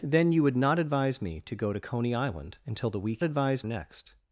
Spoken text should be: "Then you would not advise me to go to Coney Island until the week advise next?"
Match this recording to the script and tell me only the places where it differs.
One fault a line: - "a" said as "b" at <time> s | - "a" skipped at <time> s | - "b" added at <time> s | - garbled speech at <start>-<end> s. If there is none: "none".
none